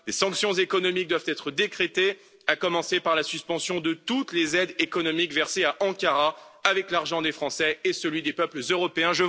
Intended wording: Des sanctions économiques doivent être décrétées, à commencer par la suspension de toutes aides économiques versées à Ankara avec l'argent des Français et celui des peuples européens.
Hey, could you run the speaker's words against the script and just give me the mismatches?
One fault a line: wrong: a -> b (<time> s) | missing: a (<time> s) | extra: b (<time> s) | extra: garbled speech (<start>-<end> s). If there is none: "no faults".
extra: les (4.3 s)